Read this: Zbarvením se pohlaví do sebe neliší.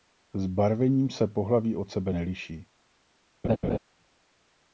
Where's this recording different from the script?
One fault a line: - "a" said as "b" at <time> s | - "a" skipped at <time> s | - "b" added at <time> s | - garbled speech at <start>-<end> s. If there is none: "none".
- "do" said as "od" at 1.8 s